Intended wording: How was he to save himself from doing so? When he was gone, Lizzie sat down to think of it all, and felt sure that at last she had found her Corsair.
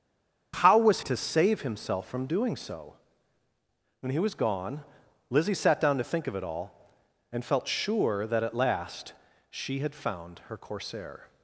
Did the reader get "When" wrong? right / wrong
right